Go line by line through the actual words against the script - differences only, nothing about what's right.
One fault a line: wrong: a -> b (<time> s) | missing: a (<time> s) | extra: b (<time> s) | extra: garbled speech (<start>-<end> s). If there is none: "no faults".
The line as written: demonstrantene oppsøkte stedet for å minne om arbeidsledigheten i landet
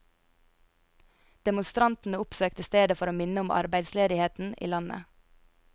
no faults